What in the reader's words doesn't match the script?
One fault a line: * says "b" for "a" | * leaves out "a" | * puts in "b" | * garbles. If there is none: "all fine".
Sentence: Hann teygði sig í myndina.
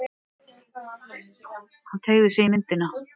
all fine